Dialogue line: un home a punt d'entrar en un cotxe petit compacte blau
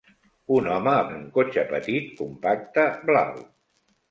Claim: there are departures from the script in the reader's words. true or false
true